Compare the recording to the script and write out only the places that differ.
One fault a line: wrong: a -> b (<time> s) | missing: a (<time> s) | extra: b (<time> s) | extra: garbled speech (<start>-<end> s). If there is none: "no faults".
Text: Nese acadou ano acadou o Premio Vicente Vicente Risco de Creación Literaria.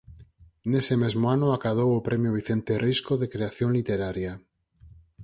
wrong: acadou -> mesmo (1.0 s)
missing: Vicente (2.7 s)